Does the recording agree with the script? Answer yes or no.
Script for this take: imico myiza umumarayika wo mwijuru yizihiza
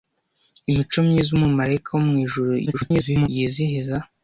no